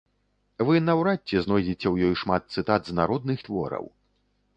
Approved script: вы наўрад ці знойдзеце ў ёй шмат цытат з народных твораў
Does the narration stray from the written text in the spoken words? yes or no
no